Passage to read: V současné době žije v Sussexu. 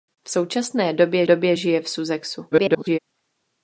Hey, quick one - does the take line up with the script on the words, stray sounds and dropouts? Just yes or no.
no